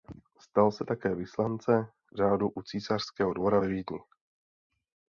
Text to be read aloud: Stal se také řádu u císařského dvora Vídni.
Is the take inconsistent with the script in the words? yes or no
yes